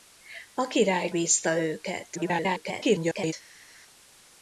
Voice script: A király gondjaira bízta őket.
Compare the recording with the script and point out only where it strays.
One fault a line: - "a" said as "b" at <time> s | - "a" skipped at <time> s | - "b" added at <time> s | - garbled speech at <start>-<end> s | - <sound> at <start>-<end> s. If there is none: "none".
- "gondjaira" skipped at 1.1 s
- garbled speech at 2.1-3.3 s